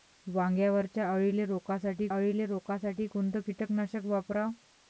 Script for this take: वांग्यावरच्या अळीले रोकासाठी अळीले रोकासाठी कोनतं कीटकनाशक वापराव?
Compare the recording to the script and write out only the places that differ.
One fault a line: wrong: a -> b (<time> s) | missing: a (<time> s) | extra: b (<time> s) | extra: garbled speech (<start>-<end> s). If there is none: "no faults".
no faults